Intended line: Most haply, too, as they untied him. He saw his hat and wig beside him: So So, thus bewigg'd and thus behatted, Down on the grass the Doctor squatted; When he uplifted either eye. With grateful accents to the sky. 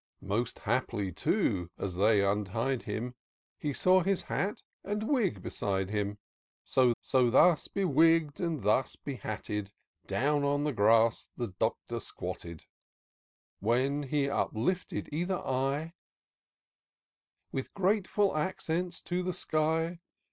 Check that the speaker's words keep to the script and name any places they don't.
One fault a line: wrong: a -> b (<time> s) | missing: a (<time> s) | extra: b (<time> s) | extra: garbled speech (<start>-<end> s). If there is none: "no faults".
no faults